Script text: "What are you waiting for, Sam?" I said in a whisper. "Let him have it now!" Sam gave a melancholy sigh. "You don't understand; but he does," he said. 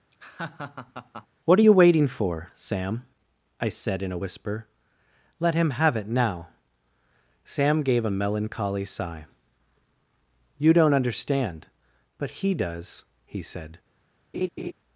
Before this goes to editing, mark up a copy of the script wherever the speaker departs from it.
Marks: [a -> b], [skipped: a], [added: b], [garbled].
"What are you waiting for, Sam?" I said in a whisper. "Let him have it now!" Sam gave a melancholy sigh. "You don't understand; but he does," he said.